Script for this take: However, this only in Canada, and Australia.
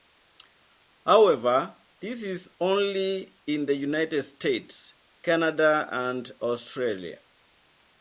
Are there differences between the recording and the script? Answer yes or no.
yes